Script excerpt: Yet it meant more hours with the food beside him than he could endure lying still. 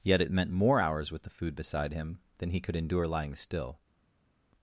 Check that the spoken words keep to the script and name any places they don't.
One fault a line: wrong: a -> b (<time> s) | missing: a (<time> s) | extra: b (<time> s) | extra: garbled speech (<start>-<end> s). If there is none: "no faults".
no faults